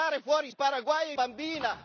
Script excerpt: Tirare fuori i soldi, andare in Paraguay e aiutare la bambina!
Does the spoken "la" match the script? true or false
false